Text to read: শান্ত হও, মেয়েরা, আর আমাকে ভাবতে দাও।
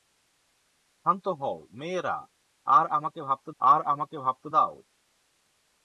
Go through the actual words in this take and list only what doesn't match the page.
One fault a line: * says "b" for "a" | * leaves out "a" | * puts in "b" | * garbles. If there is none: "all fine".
* puts in "আর আমাকে ভাবতে"